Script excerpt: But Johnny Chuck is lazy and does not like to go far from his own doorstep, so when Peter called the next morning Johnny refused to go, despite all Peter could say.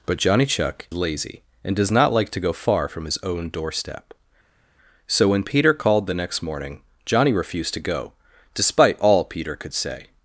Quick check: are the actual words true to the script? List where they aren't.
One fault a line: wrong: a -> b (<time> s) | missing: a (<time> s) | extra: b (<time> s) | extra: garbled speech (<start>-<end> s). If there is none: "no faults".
missing: is (0.9 s)